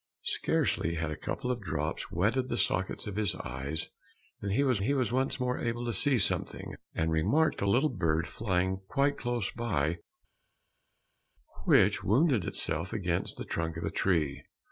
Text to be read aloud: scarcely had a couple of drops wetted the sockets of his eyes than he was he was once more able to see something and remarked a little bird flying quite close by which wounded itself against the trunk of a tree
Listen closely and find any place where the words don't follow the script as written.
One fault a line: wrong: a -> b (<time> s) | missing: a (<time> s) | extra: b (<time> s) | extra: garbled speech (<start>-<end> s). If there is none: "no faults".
no faults